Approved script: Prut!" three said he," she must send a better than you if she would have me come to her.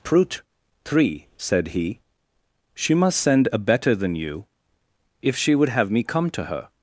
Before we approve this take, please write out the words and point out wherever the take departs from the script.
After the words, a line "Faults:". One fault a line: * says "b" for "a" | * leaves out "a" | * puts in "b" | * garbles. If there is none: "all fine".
Prut!" three said he," she must send a better than you if she would have me come to her.
Faults:
all fine